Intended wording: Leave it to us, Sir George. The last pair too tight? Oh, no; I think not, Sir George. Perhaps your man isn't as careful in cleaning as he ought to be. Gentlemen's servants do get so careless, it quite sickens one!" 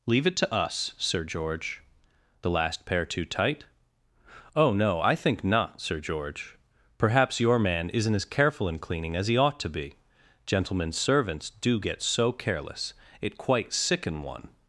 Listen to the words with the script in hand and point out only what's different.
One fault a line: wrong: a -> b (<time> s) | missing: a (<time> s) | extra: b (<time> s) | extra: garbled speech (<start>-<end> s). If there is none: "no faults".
wrong: sickens -> sicken (13.7 s)